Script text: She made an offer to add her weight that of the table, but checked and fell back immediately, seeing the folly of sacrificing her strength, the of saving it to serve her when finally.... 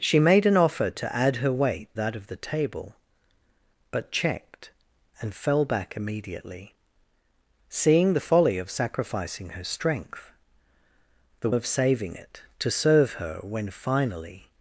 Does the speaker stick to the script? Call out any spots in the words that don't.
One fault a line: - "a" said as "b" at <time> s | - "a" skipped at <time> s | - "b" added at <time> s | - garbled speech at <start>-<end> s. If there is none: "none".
none